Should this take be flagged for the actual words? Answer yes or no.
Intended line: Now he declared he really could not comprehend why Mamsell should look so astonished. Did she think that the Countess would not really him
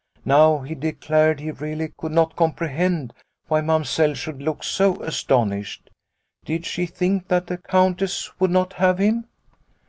yes